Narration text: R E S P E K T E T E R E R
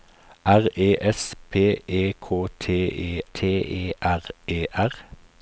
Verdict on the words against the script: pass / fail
pass